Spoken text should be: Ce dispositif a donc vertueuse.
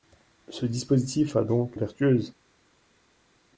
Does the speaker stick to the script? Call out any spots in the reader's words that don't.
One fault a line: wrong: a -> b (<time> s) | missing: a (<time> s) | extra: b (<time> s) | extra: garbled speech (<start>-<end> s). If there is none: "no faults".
no faults